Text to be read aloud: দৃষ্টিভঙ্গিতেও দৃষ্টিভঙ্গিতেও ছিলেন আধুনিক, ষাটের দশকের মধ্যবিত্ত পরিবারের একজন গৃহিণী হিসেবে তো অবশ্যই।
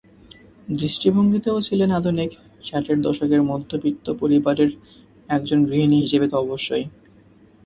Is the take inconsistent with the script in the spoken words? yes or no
yes